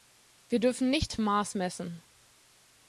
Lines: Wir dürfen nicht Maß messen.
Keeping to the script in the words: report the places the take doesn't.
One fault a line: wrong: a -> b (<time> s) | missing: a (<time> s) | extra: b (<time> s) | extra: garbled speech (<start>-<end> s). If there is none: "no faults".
no faults